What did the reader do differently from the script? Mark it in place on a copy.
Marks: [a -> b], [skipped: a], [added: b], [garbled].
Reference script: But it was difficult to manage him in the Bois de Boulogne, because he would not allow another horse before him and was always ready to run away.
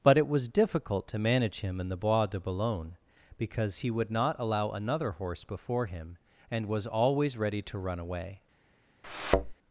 But it was difficult to manage him in the Bois de Boulogne, because he would not allow another horse before him and was always ready to run away.